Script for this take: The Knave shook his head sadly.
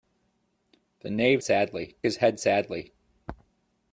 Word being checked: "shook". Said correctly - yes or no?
no